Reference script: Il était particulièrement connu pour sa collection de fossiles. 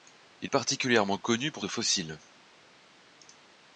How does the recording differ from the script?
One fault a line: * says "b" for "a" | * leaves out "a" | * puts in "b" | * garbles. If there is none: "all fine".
* leaves out "était"
* leaves out "sa collection"